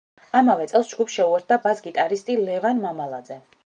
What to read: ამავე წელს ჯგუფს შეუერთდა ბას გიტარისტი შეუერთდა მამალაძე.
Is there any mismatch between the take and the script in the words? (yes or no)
yes